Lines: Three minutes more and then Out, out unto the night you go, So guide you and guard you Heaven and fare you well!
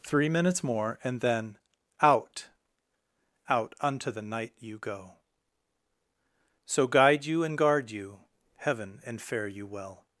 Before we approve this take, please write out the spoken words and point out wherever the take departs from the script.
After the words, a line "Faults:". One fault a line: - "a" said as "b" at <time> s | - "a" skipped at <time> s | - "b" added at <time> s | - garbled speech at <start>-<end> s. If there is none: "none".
Three minutes more and then Out, out unto the night you go, So guide you and guard you Heaven and fare you well!
Faults:
none